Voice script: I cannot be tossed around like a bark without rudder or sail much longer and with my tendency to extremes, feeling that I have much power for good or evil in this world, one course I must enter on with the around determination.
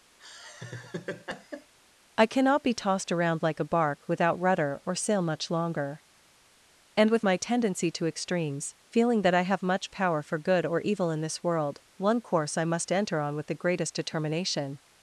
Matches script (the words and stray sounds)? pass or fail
fail